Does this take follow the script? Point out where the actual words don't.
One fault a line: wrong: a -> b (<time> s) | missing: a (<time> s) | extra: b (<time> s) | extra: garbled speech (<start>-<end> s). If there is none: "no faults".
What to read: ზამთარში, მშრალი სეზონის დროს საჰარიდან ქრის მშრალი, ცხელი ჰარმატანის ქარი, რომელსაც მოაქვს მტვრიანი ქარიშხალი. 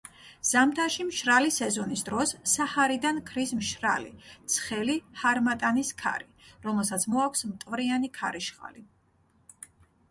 no faults